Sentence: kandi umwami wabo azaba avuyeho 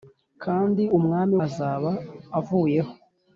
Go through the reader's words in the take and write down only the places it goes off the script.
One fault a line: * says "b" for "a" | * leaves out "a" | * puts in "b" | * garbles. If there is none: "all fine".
* leaves out "wabo"